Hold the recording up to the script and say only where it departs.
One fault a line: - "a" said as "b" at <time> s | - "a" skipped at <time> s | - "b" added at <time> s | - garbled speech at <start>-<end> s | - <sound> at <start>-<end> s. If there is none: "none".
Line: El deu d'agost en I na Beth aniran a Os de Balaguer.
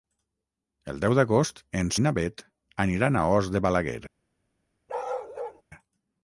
- bark at 4.9-5.6 s